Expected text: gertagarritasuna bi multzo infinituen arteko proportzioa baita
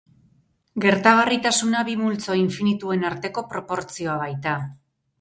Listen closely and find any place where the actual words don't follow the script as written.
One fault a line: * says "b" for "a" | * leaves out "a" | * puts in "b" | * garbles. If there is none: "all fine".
all fine